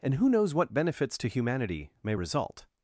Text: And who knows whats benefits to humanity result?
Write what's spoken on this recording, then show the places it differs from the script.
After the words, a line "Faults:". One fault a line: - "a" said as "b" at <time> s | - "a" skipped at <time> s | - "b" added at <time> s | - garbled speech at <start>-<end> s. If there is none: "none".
And who knows what benefits to humanity may result?
Faults:
- "whats" said as "what" at 0.6 s
- "may" added at 2.0 s